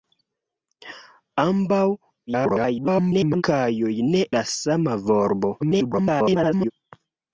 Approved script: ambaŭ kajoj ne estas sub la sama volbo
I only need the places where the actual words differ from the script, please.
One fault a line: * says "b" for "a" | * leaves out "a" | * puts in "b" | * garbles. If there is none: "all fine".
* garbles
* leaves out "estas sub"
* garbles